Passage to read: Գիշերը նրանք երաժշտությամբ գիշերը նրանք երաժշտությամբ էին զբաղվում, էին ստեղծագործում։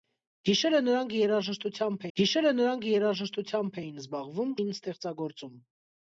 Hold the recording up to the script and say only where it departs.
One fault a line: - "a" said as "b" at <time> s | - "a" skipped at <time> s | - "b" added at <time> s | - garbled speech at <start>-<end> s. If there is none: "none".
none